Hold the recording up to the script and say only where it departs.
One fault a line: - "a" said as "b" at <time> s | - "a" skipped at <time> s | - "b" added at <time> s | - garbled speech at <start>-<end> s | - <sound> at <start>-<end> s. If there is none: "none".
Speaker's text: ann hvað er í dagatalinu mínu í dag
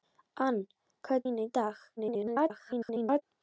- "dagatalinu" skipped at 1.3 s
- garbled speech at 2.0-3.2 s